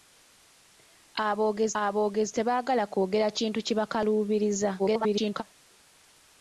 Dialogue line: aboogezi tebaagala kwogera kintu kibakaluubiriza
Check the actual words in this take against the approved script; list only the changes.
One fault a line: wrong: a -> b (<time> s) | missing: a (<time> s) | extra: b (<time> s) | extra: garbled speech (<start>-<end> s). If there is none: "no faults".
extra: aboogezi (1.8 s)
extra: garbled speech (4.8-5.4 s)